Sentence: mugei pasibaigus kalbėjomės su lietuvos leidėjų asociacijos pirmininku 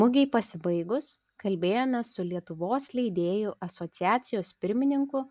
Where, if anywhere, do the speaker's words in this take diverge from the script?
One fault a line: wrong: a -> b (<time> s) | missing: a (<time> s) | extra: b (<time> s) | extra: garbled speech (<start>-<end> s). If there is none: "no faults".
no faults